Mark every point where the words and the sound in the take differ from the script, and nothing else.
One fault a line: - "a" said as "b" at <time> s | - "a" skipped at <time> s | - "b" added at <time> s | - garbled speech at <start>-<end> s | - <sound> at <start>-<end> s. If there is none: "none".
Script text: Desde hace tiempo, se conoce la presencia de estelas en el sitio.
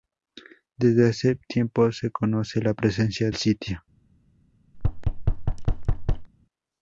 - "de estelas en" skipped at 3.3 s
- thud at 4.7-6.3 s